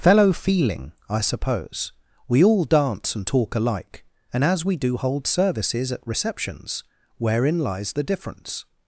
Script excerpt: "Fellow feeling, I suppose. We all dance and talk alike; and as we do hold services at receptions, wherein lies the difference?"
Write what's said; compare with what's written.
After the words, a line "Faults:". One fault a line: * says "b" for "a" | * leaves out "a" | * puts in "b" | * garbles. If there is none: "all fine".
"Fellow feeling, I suppose. We all dance and talk alike; and as we do hold services at receptions, wherein lies the difference?"
Faults:
all fine